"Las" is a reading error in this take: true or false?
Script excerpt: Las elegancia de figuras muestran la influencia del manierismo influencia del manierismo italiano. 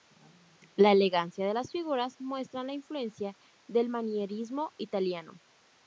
true